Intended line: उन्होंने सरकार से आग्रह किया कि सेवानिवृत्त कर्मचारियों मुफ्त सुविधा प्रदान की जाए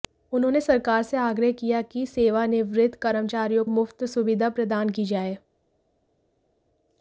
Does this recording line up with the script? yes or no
yes